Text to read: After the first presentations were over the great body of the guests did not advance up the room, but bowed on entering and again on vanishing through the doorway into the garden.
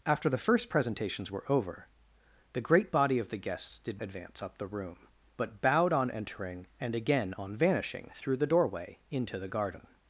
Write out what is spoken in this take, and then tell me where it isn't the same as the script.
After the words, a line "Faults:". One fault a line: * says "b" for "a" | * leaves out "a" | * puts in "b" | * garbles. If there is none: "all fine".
After the first presentations were over the great body of the guests did advance up the room, but bowed on entering and again on vanishing through the doorway into the garden.
Faults:
* leaves out "not"